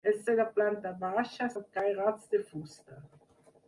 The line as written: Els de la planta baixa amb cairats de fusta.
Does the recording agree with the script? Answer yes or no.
yes